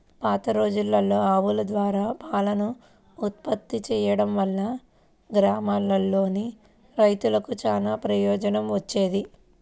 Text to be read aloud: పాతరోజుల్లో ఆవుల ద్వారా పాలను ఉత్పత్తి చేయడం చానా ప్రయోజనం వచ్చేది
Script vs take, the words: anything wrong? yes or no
yes